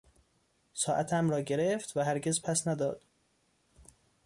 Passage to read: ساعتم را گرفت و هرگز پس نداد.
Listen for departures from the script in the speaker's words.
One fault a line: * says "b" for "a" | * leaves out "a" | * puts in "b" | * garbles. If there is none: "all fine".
all fine